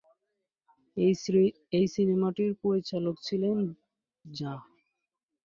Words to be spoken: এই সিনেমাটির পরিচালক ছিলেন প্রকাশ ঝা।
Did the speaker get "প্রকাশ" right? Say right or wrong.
wrong